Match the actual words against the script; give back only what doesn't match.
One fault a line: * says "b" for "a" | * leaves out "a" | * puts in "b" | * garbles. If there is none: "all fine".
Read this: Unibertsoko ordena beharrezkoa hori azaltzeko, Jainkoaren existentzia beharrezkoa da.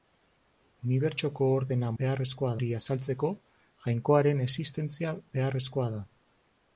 all fine